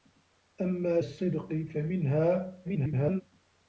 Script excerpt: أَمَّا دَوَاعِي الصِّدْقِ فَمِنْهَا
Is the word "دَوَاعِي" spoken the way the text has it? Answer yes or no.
no